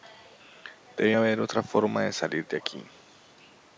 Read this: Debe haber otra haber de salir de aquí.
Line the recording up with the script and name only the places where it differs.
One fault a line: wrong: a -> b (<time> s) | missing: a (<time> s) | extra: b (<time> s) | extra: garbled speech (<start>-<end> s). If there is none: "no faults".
wrong: haber -> forma (1.6 s)